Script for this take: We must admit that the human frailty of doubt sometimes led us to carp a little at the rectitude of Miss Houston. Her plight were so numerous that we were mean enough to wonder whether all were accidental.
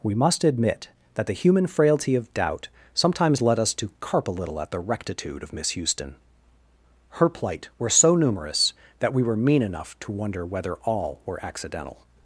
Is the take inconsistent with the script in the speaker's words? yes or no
no